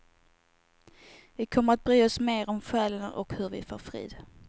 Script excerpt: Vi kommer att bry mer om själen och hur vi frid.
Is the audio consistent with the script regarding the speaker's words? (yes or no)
no